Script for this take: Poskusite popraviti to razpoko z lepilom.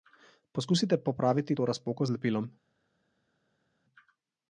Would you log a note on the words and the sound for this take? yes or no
no